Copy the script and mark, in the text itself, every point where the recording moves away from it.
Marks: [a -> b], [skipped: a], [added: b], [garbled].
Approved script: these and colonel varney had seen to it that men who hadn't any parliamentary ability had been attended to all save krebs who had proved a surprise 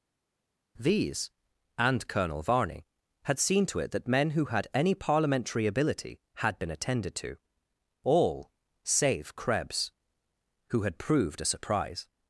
these and colonel varney had seen to it that men who [hadn't -> had] any parliamentary ability had been attended to all save krebs who had proved a surprise